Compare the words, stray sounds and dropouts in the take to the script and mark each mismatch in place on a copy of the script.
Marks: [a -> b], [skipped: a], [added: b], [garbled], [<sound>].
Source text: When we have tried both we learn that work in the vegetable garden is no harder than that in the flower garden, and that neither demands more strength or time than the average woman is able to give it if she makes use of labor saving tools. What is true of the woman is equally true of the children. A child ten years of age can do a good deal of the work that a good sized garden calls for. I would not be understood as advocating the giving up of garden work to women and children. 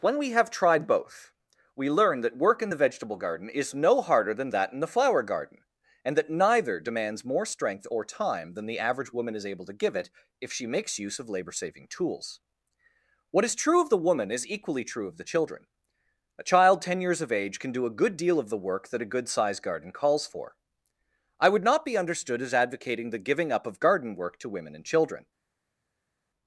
When we have tried both we learn that work in the vegetable garden is no harder than that in the flower garden, and that neither demands more strength or time than the average woman is able to give it if she makes use of labor saving tools. What is true of the woman is equally true of the children. A child ten years of age can do a good deal of the work that a good sized garden calls for. I would not be understood as advocating the giving up of garden work to women and children.